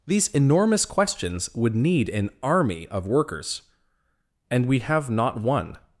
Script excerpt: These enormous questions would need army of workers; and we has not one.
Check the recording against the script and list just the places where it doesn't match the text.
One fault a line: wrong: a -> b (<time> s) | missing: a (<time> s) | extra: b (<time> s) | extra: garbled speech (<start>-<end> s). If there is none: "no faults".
extra: an (2.1 s)
wrong: has -> have (4.8 s)